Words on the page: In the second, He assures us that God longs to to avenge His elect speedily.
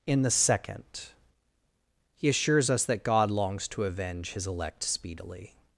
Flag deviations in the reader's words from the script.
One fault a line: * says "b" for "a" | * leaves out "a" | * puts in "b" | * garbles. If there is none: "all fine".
* leaves out "to"